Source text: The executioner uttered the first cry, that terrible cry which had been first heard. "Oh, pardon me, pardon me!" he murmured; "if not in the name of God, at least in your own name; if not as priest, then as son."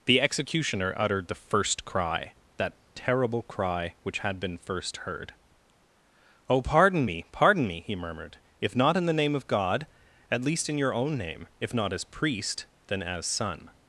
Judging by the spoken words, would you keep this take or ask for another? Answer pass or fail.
pass